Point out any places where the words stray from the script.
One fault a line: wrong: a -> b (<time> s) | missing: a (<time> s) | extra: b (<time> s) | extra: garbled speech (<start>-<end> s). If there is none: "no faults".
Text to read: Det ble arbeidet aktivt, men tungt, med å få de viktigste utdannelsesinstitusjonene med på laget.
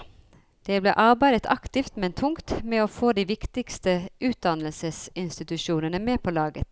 no faults